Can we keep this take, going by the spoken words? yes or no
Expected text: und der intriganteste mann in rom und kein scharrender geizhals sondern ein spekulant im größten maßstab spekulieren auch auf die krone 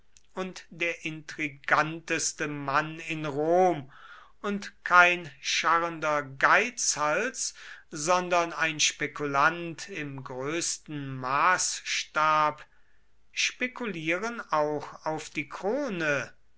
yes